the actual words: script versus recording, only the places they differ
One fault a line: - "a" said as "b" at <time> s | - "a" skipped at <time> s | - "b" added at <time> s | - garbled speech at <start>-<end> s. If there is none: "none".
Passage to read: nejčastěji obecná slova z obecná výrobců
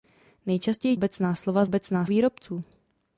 none